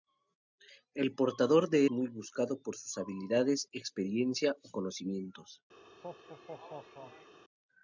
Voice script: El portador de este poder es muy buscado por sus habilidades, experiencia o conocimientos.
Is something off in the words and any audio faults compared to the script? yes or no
yes